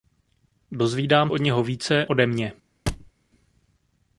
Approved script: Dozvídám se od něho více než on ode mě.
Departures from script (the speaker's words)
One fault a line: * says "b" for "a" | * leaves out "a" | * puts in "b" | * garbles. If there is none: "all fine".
* leaves out "se"
* leaves out "než on"